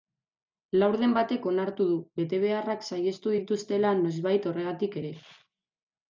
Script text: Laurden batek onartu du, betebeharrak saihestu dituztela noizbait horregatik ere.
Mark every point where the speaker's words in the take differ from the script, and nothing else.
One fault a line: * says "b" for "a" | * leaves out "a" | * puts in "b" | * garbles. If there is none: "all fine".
all fine